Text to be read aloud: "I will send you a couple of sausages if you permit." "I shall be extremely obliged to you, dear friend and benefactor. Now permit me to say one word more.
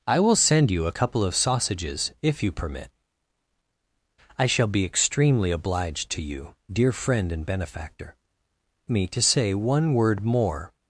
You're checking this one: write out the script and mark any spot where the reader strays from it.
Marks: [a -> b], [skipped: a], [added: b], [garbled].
"I will send you a couple of sausages if you permit." "I shall be extremely obliged to you, dear friend and benefactor. [skipped: Now permit] me to say one word more.